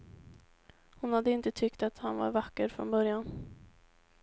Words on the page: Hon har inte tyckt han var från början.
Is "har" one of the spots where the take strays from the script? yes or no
yes